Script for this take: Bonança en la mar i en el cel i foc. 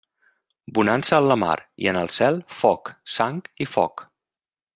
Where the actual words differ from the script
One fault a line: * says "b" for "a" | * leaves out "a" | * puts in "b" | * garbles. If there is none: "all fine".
* puts in "foc sang"